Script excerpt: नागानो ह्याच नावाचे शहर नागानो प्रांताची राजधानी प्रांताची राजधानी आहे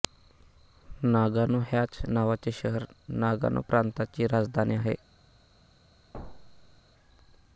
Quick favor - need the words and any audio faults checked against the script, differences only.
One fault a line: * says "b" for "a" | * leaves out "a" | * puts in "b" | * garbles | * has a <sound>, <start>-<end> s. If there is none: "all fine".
* leaves out "प्रांताची राजधानी"
* has a thud, 6.1-6.8 s